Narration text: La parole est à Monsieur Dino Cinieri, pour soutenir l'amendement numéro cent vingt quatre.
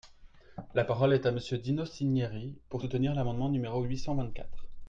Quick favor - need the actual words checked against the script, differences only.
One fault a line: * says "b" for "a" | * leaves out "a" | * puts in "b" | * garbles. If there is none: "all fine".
* puts in "huit"